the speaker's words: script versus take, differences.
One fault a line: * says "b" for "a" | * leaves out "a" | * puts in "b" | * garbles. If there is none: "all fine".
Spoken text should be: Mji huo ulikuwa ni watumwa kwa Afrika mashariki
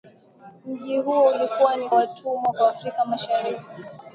all fine